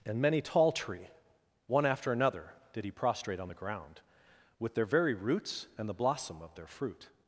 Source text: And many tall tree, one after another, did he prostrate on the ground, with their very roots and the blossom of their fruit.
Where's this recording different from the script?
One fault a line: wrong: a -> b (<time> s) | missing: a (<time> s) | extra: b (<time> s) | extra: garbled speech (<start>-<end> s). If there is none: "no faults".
no faults